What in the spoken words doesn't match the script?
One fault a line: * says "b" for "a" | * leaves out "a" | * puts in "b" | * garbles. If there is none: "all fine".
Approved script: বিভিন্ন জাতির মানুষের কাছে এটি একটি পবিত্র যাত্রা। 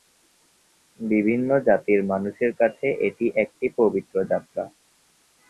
all fine